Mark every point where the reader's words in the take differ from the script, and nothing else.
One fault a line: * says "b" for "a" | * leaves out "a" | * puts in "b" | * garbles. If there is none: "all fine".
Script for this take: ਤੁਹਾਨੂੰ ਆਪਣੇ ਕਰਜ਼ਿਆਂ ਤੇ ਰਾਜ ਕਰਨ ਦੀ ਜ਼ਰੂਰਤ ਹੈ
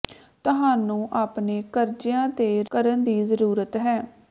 * leaves out "ਰਾਜ"